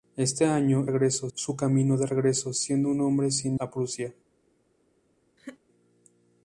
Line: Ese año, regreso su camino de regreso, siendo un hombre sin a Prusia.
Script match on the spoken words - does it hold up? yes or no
yes